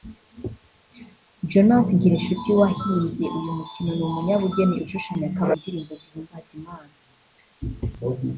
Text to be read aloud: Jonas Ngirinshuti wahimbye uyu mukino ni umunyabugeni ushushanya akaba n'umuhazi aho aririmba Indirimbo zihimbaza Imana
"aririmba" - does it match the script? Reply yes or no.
no